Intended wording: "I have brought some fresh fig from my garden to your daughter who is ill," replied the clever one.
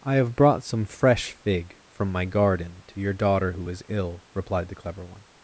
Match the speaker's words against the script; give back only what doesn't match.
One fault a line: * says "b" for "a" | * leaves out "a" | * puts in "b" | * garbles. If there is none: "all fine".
all fine